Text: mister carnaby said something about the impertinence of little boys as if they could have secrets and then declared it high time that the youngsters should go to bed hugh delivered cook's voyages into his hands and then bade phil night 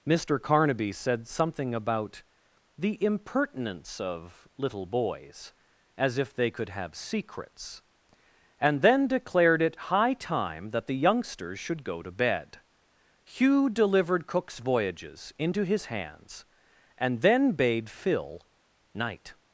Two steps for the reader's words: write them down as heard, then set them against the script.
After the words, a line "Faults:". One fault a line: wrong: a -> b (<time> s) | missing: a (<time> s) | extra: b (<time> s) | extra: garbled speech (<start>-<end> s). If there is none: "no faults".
mister carnaby said something about the impertinence of little boys as if they could have secrets and then declared it high time that the youngsters should go to bed hugh delivered cook's voyages into his hands and then bade phil night
Faults:
no faults